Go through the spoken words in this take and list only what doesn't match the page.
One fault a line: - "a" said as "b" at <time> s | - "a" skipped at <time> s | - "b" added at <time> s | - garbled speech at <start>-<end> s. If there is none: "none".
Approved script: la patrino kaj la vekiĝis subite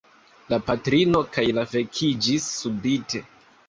none